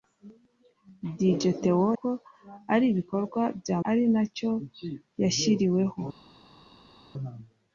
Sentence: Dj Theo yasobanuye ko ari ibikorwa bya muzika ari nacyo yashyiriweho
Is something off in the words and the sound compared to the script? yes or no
yes